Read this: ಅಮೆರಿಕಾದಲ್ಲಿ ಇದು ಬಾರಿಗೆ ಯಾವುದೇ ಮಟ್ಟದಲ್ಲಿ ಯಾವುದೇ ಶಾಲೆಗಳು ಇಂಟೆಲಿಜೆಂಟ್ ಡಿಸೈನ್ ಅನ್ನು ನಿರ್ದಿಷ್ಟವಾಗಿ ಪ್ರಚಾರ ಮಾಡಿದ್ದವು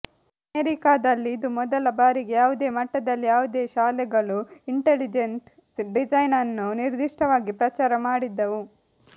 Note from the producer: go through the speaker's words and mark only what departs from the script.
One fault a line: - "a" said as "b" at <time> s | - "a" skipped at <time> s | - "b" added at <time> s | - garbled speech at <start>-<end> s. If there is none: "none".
- "ಮೊದಲ" added at 1.6 s